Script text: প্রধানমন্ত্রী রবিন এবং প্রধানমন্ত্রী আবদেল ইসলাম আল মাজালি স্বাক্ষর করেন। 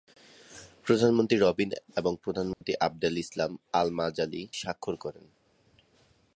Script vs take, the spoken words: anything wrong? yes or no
no